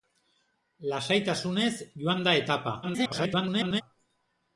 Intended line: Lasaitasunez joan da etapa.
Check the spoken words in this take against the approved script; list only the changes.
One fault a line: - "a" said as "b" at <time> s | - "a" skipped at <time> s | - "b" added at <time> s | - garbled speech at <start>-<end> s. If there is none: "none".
- garbled speech at 2.8-3.8 s